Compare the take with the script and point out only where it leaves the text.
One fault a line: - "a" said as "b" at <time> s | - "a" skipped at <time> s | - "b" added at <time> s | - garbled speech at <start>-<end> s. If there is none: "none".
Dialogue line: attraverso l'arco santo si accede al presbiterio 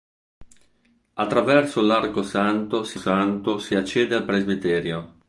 - "santo si" added at 2.9 s